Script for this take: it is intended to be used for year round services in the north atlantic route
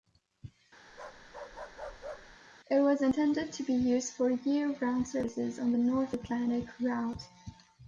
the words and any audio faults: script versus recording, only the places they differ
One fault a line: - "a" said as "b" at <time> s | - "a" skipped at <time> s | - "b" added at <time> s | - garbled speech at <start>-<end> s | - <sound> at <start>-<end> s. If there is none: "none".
- bark at 0.9-2.4 s
- "is" said as "was" at 2.8 s
- "in" said as "on" at 5.6 s